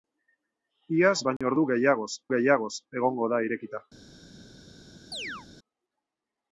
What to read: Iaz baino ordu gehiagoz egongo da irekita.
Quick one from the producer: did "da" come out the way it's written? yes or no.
yes